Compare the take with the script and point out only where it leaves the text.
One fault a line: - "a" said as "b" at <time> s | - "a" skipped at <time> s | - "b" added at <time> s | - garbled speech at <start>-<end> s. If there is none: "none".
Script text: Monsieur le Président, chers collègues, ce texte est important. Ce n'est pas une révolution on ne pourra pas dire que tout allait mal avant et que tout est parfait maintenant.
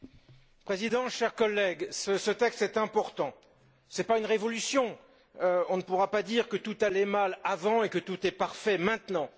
none